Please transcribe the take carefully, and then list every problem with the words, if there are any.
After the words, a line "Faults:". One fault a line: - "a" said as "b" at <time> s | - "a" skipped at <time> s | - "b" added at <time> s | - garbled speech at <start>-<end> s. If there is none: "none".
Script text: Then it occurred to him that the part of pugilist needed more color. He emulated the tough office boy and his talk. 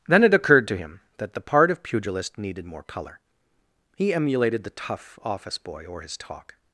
Then it occurred to him that the part of pugilist needed more color. He emulated the tough office boy or his talk.
Faults:
- "and" said as "or" at 5.8 s